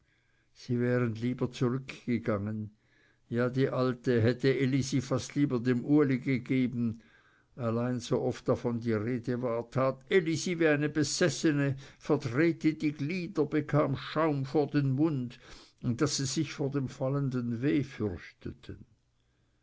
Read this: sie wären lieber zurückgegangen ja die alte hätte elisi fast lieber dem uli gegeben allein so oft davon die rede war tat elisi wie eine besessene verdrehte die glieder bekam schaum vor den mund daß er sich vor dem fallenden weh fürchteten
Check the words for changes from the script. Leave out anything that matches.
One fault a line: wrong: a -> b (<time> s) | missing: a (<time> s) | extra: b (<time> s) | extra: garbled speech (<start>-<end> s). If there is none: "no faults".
wrong: er -> sie (16.1 s)